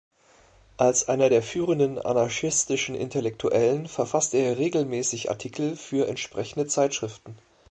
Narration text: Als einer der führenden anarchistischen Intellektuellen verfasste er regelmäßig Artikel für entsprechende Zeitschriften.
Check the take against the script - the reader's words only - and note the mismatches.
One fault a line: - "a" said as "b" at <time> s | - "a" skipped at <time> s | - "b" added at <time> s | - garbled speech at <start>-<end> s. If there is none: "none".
none